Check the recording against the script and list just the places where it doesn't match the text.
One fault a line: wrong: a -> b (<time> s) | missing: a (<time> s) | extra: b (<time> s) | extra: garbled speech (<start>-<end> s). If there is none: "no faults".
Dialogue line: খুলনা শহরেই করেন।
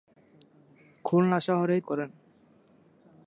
no faults